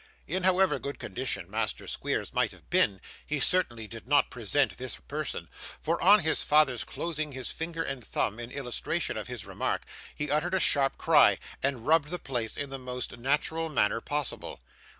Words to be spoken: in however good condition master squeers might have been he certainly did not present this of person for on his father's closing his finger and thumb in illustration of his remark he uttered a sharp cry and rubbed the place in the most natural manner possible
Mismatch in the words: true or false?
false